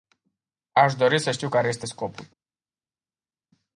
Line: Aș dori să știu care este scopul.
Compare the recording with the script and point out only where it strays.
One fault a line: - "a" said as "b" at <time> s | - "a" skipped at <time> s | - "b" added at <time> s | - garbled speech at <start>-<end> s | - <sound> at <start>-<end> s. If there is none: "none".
none